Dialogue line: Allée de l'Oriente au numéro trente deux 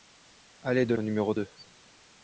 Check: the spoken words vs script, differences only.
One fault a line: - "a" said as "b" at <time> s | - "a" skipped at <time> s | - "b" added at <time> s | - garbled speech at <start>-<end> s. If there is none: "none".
- "l'Oriente" skipped at 0.9 s
- "trente" skipped at 1.3 s